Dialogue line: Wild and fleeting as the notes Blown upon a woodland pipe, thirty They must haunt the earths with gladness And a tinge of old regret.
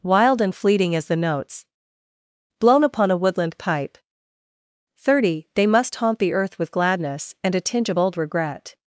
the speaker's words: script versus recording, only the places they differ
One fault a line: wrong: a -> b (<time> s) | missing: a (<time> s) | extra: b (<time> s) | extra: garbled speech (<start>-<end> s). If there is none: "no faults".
wrong: earths -> earth (6.3 s)